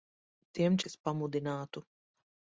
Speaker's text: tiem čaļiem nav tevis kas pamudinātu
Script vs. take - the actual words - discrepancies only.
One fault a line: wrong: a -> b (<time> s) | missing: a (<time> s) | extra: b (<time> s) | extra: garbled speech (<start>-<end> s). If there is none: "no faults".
missing: čaļiem nav tevis (0.8 s)